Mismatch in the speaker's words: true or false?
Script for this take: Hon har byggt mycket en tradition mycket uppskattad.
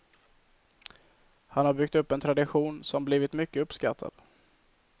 true